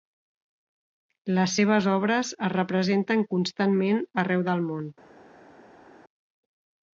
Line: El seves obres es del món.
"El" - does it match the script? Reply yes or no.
no